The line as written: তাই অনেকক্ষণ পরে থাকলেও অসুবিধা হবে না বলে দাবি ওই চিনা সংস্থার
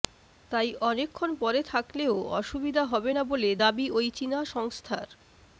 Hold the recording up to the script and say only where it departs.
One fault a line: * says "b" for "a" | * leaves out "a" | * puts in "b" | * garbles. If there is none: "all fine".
all fine